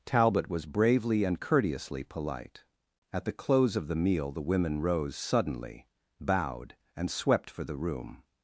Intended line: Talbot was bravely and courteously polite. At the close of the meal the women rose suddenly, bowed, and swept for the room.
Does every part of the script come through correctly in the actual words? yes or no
yes